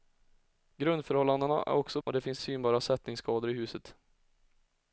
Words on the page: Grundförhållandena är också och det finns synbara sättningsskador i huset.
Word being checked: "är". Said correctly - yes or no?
yes